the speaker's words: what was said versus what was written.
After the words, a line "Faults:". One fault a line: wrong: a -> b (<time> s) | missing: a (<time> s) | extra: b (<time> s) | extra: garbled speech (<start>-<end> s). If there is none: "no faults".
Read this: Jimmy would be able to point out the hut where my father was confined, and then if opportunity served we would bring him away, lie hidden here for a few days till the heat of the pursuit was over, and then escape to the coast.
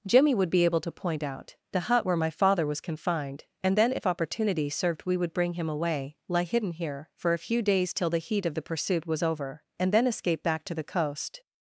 Jimmy would be able to point out the hut where my father was confined, and then if opportunity served we would bring him away, lie hidden here for a few days till the heat of the pursuit was over, and then escape back to the coast.
Faults:
extra: back (10.4 s)